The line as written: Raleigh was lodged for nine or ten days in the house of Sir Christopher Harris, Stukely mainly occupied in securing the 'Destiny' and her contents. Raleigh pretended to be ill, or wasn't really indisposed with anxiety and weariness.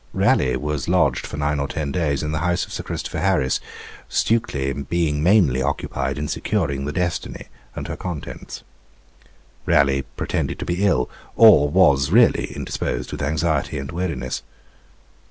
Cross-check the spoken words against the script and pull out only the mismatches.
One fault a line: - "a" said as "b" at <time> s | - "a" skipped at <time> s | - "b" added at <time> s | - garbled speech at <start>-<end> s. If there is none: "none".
- "being" added at 4.7 s
- "wasn't" said as "was" at 11.7 s